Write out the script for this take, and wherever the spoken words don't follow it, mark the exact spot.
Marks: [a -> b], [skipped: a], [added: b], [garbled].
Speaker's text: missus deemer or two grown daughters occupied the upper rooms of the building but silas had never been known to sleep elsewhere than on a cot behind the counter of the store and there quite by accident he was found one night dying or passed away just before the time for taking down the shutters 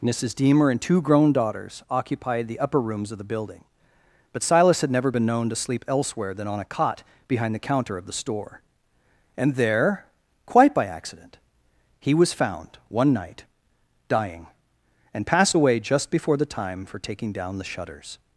missus deemer [or -> and] two grown daughters occupied the upper rooms of the building but silas had never been known to sleep elsewhere than on a cot behind the counter of the store and there quite by accident he was found one night dying [or -> and] passed away just before the time for taking down the shutters